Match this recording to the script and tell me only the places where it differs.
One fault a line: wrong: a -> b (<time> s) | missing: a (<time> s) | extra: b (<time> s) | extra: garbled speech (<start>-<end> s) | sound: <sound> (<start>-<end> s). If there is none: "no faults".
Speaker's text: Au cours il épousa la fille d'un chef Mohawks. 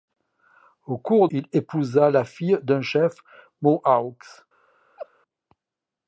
sound: laugh (5.0-5.1 s)